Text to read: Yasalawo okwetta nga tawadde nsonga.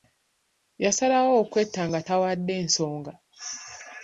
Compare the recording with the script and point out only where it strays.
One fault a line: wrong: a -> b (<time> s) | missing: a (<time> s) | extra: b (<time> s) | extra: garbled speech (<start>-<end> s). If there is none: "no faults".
no faults